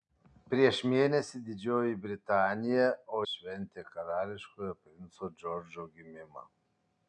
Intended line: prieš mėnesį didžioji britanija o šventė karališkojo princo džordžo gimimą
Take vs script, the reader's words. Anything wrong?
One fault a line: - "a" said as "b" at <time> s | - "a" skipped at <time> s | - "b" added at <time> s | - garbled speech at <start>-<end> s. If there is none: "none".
none